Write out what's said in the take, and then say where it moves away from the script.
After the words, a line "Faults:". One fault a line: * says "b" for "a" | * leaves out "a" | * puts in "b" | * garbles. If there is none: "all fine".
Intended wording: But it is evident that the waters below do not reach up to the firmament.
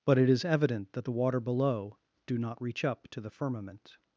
But it is evident that the water below do not reach up to the firmament.
Faults:
* says "water" for "waters"